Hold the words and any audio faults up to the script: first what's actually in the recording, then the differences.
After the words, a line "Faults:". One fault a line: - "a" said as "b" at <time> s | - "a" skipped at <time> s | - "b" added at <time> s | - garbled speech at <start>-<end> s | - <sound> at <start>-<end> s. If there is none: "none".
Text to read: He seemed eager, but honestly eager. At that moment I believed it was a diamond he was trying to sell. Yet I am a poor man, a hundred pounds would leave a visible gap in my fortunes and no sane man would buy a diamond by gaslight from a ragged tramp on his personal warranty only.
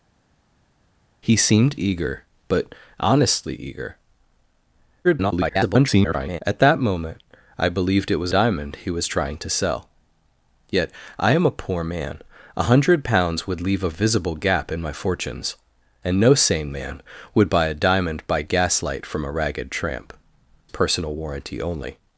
He seemed eager, but honestly eager. [garbled] At that moment I believed it was diamond he was trying to sell. Yet I am a poor man, a hundred pounds would leave a visible gap in my fortunes and no sane man would buy a diamond by gaslight from a ragged tramp personal warranty only.
Faults:
- garbled speech at 5.0-6.4 s
- "a" skipped at 8.3 s
- "on his" skipped at 20.1 s